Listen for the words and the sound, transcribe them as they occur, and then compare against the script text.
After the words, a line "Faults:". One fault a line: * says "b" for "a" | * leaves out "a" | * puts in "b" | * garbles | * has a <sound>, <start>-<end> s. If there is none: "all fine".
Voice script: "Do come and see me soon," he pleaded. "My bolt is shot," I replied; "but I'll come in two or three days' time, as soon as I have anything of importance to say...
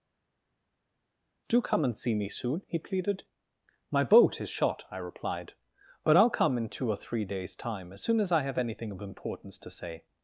"Do come and see me soon," he pleaded. "My boat is shot," I replied; "but I'll come in two or three days' time, as soon as I have anything of importance to say...
Faults:
* says "boat" for "bolt"